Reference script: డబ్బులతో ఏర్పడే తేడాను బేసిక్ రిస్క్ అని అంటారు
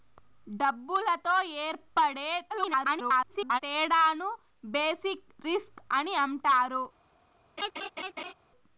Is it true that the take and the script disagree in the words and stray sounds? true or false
true